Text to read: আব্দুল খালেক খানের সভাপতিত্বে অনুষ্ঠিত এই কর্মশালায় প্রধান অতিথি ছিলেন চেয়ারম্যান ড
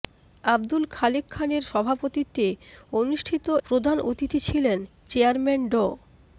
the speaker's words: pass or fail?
fail